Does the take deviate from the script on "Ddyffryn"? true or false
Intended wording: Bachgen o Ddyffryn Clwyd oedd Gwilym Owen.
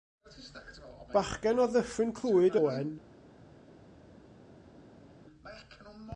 false